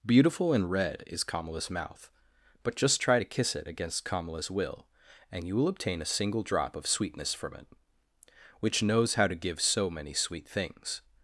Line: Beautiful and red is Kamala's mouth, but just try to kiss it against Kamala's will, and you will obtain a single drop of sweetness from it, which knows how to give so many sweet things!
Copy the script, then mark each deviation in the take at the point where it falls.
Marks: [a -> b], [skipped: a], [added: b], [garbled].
Beautiful and red is Kamala's mouth, but just try to kiss it against Kamala's will, and you will obtain a single drop of sweetness from it, which knows how to give so many sweet things!